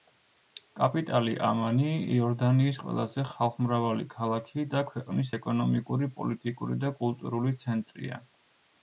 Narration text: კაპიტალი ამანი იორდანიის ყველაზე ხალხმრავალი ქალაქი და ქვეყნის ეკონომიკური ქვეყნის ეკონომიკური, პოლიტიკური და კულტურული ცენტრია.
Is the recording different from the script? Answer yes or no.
yes